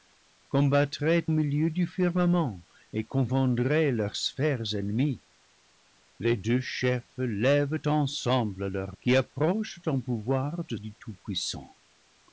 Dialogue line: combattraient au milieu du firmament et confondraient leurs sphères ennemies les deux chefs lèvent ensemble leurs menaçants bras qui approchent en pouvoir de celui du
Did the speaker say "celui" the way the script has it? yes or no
no